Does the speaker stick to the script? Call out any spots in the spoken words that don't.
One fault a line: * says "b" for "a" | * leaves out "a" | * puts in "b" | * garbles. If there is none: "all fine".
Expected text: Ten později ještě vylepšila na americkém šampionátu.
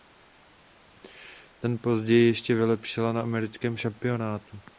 all fine